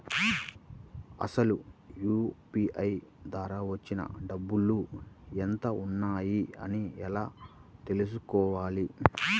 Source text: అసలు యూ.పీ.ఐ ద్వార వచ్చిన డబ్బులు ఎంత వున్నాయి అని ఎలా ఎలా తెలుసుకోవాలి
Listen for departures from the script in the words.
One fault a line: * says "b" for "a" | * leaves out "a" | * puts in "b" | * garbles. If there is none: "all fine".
* leaves out "ఎలా"